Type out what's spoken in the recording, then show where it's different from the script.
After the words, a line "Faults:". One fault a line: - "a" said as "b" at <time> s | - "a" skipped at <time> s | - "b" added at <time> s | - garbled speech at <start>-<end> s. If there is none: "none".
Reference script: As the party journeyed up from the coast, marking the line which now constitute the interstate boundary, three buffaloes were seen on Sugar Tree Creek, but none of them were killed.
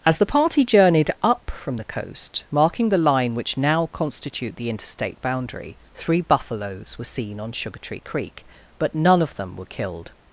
As the party journeyed up from the coast, marking the line which now constitute the interstate boundary, three buffaloes were seen on Sugar Tree Creek, but none of them were killed.
Faults:
none